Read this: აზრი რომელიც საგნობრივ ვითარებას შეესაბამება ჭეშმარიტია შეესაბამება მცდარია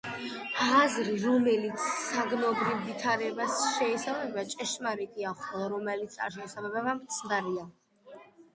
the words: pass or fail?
fail